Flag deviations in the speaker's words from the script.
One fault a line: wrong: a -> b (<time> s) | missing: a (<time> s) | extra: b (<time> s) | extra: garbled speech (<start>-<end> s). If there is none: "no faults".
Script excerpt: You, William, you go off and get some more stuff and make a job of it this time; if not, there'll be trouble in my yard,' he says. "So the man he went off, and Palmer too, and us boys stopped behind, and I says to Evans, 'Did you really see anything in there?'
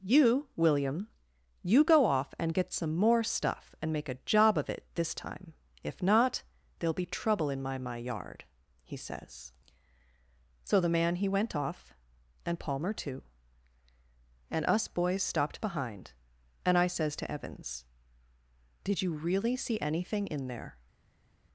extra: my (7.8 s)